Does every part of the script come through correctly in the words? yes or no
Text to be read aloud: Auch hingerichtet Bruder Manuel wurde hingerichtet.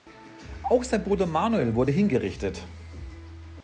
no